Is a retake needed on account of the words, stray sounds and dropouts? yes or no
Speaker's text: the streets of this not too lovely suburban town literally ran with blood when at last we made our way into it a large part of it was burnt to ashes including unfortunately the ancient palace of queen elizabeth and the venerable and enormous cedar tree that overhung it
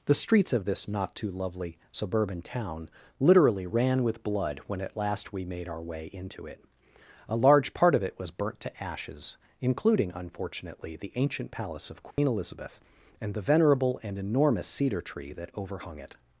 yes